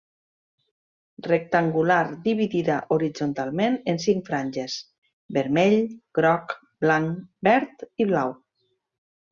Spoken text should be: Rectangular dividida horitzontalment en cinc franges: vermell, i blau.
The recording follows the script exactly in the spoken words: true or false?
false